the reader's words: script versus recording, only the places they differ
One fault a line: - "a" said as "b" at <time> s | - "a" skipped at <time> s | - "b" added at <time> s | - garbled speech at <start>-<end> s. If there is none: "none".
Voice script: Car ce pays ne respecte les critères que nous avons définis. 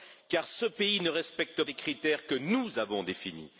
none